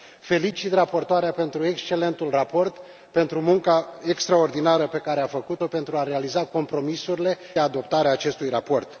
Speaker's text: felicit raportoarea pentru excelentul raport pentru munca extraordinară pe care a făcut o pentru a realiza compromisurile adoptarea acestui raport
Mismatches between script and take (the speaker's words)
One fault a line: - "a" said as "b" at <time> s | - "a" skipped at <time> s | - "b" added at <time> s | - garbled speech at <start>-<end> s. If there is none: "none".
none